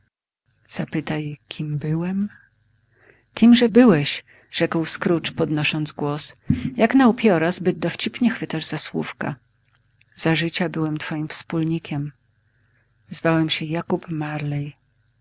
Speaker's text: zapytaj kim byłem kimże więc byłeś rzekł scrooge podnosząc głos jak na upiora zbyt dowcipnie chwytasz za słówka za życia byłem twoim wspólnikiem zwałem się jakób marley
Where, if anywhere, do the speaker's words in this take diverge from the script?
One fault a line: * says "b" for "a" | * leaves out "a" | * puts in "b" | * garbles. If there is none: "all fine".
* leaves out "więc"